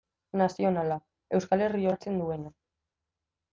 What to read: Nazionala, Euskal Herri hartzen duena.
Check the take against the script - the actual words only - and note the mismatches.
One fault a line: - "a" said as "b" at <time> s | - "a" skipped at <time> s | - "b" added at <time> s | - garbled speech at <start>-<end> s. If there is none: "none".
none